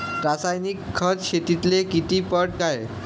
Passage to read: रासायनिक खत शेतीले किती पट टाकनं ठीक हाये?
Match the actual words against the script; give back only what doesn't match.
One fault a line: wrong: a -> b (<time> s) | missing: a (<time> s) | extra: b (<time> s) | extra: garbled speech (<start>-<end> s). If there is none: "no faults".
missing: टाकनं ठीक (2.5 s)